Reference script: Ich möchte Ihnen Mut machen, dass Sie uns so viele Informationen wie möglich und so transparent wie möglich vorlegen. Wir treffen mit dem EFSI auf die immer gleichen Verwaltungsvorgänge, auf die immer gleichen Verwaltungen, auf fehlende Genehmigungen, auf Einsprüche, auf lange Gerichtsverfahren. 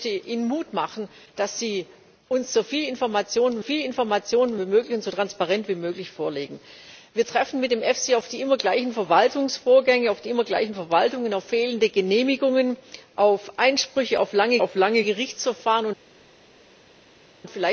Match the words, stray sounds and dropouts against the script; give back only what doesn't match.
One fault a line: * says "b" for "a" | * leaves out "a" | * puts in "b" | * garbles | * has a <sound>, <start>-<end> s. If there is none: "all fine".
* puts in "viele Informationen"
* puts in "auf lange"